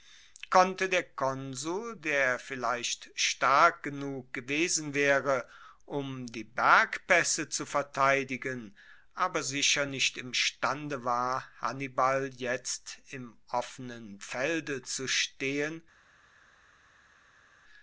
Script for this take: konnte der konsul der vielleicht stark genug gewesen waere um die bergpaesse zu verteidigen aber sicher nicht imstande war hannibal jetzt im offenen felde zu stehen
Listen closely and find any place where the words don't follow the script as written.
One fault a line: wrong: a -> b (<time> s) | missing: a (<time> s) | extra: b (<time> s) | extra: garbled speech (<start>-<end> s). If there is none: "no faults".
no faults